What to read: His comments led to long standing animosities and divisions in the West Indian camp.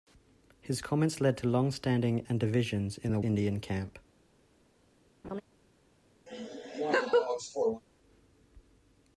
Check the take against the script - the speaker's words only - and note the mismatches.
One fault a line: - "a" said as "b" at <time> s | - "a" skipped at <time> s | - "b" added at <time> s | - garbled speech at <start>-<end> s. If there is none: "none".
- "animosities" skipped at 2.2 s
- "West" skipped at 3.2 s